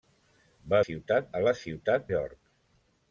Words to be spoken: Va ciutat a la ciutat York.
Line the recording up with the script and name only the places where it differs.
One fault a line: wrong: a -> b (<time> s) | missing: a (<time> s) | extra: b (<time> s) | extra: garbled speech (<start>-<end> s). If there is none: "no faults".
no faults